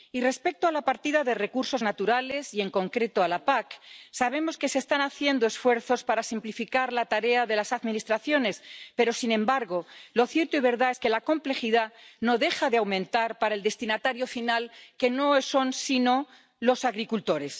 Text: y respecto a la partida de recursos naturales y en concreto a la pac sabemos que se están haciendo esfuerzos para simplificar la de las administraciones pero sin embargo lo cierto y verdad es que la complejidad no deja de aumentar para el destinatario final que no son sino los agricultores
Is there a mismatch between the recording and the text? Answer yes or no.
yes